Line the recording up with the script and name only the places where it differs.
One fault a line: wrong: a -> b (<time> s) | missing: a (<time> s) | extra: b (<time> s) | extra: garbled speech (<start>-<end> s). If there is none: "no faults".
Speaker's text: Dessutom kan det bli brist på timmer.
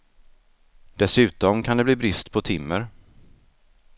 no faults